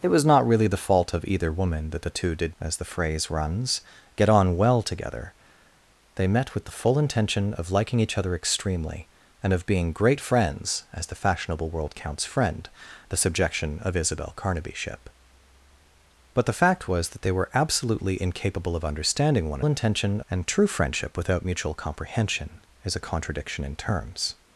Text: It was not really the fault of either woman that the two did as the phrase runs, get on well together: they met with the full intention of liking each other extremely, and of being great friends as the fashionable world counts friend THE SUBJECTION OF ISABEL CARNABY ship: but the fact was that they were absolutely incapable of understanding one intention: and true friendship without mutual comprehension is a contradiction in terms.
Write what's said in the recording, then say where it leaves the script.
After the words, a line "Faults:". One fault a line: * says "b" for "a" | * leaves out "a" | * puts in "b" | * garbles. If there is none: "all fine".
It was not really the fault of either woman that the two did as the phrase runs, get on well together: they met with the full intention of liking each other extremely, and of being great friends as the fashionable world counts friend THE SUBJECTION OF ISABEL CARNABY ship: but the fact was that they were absolutely incapable of understanding one intention: and true friendship without mutual comprehension is a contradiction in terms.
Faults:
all fine